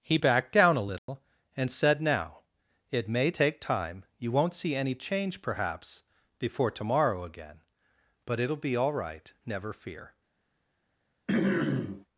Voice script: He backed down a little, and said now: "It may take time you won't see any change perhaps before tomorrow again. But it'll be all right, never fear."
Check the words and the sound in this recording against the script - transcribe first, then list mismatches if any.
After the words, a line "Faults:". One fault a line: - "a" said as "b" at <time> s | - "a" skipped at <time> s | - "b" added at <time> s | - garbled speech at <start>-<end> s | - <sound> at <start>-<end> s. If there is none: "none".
He backed down a little, and said now: "It may take time you won't see any change perhaps before tomorrow again. But it'll be all right, never fear."
Faults:
- dropout at 1.0-1.1 s
- throat clearing at 11.3-12.1 s